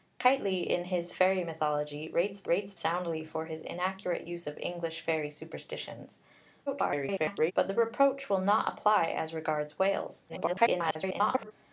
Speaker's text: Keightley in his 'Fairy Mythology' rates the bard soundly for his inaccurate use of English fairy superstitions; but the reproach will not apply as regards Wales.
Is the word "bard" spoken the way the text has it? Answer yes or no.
no